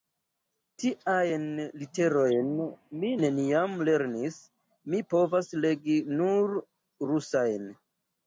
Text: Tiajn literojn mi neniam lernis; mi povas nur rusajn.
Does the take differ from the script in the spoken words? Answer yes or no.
yes